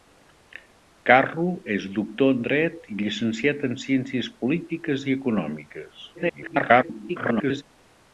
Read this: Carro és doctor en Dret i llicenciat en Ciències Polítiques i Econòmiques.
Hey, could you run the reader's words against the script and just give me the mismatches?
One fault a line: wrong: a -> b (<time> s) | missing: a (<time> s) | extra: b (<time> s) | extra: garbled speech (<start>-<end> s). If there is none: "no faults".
extra: garbled speech (6.1-7.6 s)